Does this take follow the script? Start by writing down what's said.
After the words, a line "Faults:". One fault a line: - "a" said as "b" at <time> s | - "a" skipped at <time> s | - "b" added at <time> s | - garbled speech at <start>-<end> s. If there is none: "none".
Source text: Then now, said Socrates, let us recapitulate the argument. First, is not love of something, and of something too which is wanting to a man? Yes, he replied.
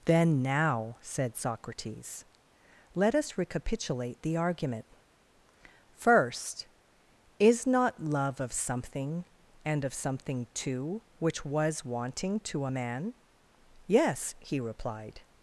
Then now, said Socrates, let us recapitulate the argument. First, is not love of something, and of something too which was wanting to a man? Yes, he replied.
Faults:
- "is" said as "was" at 11.4 s